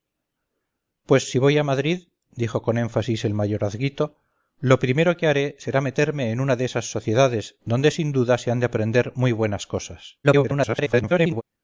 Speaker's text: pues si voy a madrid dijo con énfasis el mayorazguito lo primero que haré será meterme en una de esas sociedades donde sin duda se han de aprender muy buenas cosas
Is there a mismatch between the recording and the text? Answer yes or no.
yes